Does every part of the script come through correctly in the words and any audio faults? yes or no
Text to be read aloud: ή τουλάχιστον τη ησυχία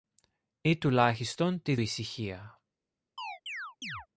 no